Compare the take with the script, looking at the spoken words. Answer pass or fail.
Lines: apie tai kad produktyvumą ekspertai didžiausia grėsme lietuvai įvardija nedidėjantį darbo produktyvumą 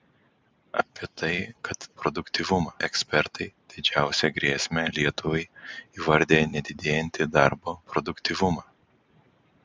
pass